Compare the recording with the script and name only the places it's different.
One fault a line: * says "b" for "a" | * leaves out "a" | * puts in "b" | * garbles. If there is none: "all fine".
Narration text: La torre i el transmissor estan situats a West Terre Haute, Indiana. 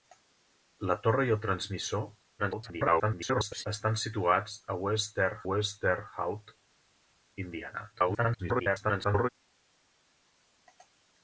* garbles
* puts in "West Terre"
* garbles